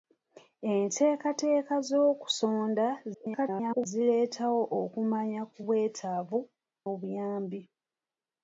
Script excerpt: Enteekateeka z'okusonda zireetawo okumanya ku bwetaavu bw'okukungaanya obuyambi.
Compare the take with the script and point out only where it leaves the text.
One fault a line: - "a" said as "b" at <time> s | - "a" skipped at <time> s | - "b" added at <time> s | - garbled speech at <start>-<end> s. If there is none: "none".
- garbled speech at 3.1-3.9 s
- "bw'okukungaanya" skipped at 6.4 s